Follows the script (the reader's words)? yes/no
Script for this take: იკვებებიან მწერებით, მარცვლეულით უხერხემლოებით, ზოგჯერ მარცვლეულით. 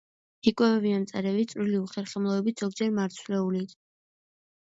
no